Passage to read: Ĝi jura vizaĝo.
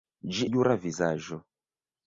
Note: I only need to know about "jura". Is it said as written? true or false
true